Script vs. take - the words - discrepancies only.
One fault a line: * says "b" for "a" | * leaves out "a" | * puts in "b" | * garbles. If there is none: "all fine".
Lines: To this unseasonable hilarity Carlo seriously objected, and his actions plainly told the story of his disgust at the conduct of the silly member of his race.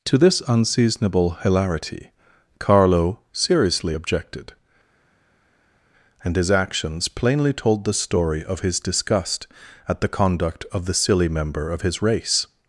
all fine